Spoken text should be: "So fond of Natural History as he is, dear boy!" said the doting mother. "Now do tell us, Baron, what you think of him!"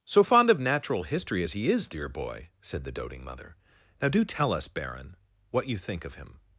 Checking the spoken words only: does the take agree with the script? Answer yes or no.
yes